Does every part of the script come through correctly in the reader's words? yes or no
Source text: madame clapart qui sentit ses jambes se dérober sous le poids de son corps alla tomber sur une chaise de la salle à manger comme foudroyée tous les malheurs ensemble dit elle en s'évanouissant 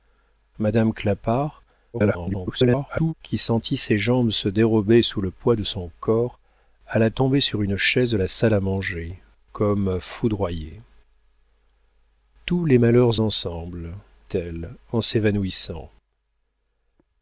no